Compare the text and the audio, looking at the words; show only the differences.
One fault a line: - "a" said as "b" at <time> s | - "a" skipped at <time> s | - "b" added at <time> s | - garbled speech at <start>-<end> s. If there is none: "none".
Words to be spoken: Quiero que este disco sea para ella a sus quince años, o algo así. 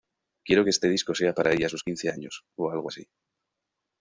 none